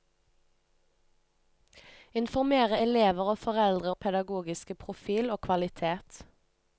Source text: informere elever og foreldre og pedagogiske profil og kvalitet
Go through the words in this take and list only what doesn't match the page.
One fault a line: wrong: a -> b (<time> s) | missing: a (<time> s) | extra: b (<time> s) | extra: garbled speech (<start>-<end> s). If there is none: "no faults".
no faults